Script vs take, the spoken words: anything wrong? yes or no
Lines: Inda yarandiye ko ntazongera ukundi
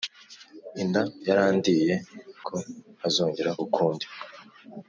no